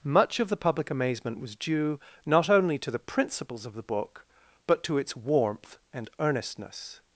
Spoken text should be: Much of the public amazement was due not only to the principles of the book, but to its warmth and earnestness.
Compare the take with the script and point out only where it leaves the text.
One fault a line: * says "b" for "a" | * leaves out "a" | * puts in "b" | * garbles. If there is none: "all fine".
all fine